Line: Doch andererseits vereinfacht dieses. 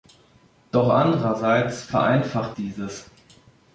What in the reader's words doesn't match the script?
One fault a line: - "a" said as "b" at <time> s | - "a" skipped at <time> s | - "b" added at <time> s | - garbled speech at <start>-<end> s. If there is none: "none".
none